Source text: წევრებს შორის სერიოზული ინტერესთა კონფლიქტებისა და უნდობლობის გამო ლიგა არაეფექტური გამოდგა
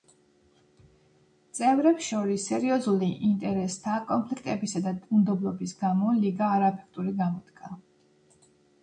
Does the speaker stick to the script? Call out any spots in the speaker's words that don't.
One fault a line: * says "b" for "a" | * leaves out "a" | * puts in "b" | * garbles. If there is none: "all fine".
all fine